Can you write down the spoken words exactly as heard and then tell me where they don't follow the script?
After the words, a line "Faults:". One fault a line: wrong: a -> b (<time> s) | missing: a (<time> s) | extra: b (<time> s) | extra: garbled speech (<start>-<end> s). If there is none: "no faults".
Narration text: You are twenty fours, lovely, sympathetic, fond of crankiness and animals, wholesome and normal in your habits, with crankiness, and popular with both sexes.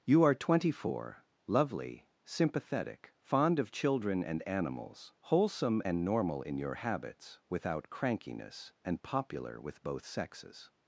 You are twenty four, lovely, sympathetic, fond of children and animals, wholesome and normal in your habits, without crankiness, and popular with both sexes.
Faults:
wrong: fours -> four (0.7 s)
wrong: crankiness -> children (3.7 s)
wrong: with -> without (7.5 s)